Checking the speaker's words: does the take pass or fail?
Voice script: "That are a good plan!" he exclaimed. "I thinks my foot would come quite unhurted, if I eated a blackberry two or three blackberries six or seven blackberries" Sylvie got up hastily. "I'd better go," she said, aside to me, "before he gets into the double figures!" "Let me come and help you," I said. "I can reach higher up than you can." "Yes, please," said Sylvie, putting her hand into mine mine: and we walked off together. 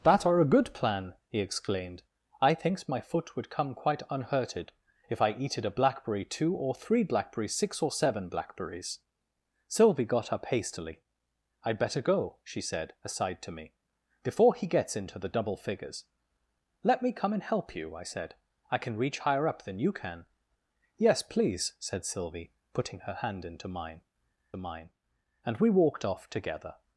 pass